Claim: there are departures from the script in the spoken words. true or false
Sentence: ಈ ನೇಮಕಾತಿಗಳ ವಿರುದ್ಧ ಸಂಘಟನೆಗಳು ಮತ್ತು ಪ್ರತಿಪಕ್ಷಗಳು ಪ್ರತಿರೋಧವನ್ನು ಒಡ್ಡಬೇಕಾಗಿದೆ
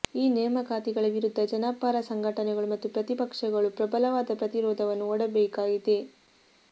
true